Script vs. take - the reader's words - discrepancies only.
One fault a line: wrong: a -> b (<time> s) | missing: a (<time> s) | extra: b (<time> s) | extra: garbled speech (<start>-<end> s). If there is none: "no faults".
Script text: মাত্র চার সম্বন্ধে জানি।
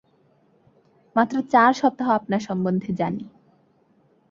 extra: সপ্তাহ আপনার (1.7 s)